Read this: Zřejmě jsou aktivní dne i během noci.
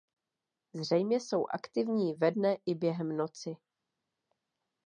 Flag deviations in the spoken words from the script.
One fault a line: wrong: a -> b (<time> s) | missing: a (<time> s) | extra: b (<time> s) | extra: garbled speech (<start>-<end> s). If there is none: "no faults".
extra: ve (2.1 s)